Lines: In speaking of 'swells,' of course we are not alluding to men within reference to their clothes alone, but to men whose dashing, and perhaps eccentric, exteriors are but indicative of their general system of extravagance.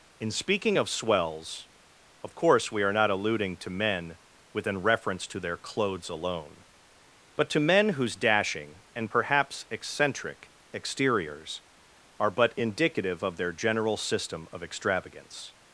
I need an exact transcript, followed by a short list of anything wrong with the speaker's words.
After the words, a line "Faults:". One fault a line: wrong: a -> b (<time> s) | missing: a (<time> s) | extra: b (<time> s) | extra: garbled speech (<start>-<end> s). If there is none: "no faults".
In speaking of 'swells,' of course we are not alluding to men within reference to their clothes alone, but to men whose dashing, and perhaps eccentric, exteriors are but indicative of their general system of extravagance.
Faults:
no faults